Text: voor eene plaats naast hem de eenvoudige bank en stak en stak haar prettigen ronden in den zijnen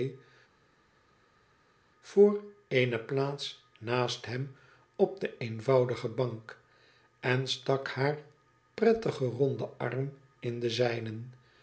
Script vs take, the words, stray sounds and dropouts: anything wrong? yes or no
yes